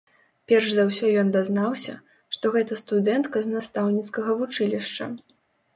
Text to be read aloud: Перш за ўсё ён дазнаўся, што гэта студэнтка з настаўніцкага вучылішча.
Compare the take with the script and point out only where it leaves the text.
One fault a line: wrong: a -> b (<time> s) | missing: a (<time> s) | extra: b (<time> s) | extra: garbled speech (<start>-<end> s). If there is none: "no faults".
no faults